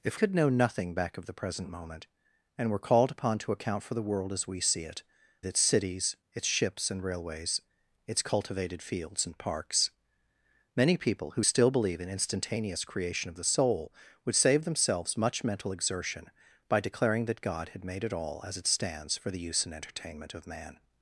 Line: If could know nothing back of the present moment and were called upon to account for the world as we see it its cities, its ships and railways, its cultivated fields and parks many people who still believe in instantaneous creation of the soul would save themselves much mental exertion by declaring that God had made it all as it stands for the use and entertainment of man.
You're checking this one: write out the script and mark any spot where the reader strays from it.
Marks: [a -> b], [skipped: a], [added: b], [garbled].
If could know nothing back of the present moment and were called upon to account for the world as we see it its cities, its ships and railways, its cultivated fields and parks many people who still believe in instantaneous creation of the soul would save themselves much mental exertion by declaring that God had made it all as it stands for the use and entertainment of man.